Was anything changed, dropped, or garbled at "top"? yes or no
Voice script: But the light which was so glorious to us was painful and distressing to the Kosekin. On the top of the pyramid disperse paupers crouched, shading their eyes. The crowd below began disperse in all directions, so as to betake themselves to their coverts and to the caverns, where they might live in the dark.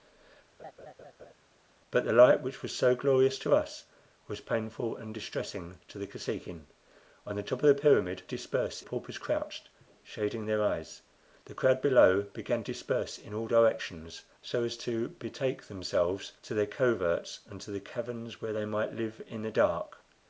no